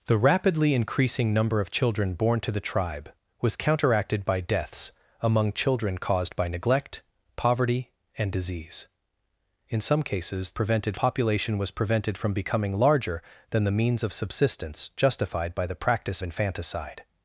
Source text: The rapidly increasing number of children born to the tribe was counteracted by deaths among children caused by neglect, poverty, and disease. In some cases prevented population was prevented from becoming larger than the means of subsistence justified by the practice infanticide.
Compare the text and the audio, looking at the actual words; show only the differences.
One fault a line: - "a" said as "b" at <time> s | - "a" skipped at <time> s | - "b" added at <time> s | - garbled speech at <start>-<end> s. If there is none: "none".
none